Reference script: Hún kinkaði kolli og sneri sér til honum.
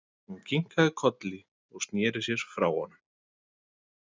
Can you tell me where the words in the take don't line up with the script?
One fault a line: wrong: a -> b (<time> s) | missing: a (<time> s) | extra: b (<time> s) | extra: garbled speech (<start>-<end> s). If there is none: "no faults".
wrong: til -> frá (2.5 s)